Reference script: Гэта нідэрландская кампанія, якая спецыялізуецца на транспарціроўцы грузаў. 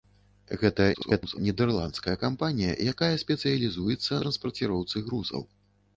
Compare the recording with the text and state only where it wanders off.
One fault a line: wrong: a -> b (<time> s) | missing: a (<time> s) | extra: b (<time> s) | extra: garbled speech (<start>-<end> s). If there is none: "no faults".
extra: garbled speech (0.9-1.4 s)
missing: на (4.1 s)